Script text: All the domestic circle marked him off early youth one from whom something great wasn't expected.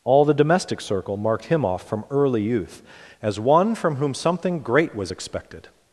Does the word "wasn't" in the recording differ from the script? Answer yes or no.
yes